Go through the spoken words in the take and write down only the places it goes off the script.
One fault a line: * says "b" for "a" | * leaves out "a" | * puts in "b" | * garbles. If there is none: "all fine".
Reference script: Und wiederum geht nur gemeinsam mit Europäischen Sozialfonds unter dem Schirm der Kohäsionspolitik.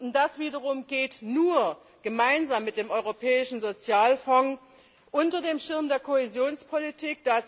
* puts in "das"
* puts in "dem"